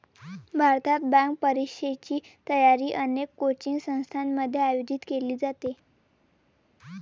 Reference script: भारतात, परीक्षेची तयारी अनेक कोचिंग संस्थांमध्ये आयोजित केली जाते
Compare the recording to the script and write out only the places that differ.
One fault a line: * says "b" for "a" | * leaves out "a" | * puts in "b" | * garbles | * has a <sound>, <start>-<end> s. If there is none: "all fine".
* puts in "बँक"